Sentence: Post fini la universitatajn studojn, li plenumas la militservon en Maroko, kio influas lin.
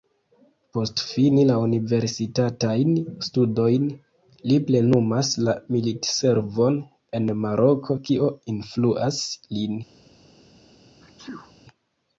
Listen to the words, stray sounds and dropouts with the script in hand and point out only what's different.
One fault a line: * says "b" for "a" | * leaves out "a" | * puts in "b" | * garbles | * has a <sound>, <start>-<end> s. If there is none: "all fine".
* has a sneeze, 11.0-11.5 s